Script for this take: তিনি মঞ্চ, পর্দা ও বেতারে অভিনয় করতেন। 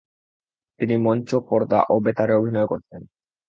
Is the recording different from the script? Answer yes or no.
no